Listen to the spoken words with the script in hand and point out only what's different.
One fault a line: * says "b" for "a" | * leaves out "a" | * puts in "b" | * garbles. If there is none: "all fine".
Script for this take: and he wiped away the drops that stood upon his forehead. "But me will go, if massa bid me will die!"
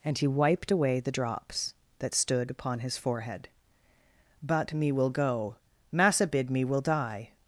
* leaves out "if"